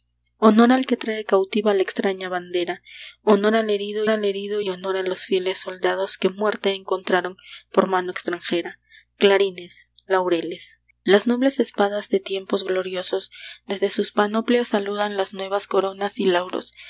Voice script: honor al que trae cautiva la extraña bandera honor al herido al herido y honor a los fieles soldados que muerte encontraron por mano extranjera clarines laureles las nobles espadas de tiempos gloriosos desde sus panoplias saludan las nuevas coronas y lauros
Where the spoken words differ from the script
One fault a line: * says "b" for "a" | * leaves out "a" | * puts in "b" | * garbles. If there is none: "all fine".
all fine